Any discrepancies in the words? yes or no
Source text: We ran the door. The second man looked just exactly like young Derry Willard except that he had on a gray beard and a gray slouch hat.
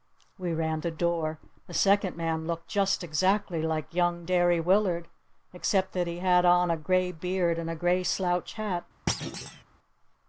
no